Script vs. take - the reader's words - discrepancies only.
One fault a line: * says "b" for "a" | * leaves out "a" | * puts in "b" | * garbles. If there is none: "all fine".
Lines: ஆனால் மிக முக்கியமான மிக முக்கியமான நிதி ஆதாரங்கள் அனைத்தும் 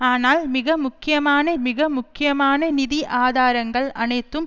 all fine